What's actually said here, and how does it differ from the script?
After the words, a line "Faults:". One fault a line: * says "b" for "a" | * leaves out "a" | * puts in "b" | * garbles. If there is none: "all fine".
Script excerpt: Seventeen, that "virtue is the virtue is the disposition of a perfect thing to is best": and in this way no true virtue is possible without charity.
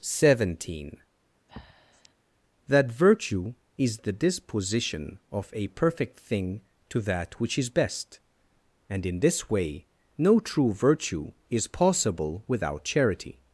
Seventeen, that "virtue is the disposition of a perfect thing to that which is best": and in this way no true virtue is possible without charity.
Faults:
* leaves out "virtue is the"
* puts in "that which"